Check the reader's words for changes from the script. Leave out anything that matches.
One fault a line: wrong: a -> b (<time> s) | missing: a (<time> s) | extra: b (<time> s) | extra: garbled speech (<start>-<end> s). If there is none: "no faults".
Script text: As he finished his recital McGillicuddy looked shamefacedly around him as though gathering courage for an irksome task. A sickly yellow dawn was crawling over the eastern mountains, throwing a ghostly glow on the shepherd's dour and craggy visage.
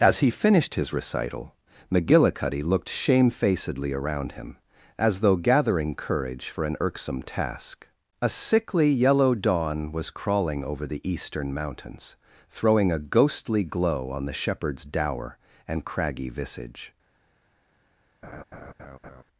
no faults